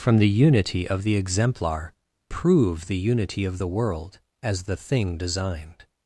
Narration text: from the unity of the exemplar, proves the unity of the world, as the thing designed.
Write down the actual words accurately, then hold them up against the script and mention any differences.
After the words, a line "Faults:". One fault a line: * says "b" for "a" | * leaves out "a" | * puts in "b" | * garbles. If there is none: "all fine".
from the unity of the exemplar, prove the unity of the world, as the thing designed.
Faults:
* says "prove" for "proves"